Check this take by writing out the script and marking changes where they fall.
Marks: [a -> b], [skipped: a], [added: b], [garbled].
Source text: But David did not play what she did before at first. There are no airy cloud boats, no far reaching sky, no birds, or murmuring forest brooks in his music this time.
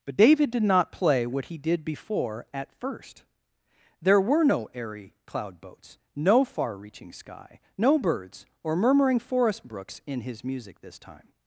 But David did not play what [she -> he] did before at first. There [are -> were] no airy cloud boats, no far reaching sky, no birds, or murmuring forest brooks in his music this time.